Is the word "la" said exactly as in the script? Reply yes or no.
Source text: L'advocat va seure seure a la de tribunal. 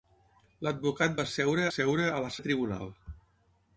yes